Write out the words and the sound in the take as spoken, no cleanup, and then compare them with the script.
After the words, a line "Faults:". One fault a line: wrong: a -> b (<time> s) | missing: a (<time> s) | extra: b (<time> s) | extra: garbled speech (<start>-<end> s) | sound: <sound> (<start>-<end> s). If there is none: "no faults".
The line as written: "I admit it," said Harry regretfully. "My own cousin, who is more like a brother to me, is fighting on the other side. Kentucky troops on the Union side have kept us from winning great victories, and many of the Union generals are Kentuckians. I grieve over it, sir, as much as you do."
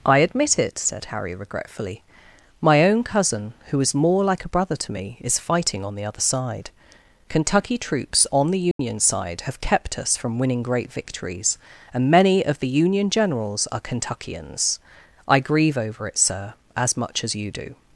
"I admit it," said Harry regretfully. "My own cousin, who is more like a brother to me, is fighting on the other side. Kentucky troops on the Union side have kept us from winning great victories, and many of the Union generals are Kentuckians. I grieve over it, sir, as much as you do."
Faults:
sound: dropout (8.7-8.8 s)